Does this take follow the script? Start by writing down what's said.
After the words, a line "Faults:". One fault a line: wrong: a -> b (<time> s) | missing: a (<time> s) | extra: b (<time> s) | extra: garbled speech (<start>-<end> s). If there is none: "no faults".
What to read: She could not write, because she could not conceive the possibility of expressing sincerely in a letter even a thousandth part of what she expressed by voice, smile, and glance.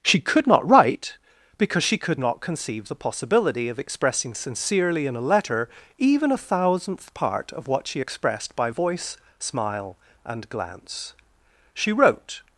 She could not write, because she could not conceive the possibility of expressing sincerely in a letter even a thousandth part of what she expressed by voice, smile, and glance. She wrote
Faults:
extra: She wrote (11.7 s)